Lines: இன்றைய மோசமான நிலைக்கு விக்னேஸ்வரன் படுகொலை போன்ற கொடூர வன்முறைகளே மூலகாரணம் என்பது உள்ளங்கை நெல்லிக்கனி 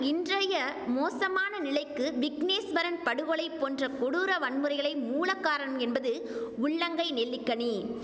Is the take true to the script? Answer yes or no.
yes